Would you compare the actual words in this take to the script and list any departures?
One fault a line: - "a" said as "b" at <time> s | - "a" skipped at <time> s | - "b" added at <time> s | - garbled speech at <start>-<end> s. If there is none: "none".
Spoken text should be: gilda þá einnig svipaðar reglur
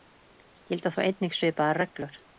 none